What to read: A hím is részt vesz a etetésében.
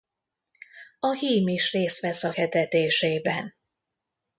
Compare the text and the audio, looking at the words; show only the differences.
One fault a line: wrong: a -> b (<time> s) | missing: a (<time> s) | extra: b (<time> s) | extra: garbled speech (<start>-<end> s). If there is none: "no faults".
no faults